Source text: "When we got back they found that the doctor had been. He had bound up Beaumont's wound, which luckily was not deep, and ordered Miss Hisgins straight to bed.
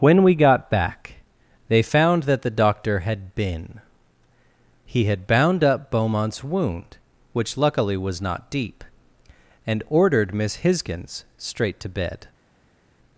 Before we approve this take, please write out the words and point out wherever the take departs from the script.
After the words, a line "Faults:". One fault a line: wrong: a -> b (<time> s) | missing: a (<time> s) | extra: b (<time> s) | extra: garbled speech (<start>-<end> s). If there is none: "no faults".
"When we got back they found that the doctor had been. He had bound up Beaumont's wound, which luckily was not deep, and ordered Miss Hisgins straight to bed.
Faults:
no faults